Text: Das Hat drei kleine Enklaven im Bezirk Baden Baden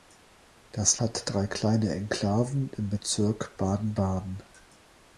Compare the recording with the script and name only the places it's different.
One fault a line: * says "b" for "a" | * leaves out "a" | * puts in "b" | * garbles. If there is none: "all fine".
all fine